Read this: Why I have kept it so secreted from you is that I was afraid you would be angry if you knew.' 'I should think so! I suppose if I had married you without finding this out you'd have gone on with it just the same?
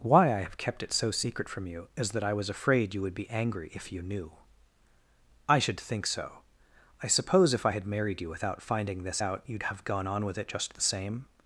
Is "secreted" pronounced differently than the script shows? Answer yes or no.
yes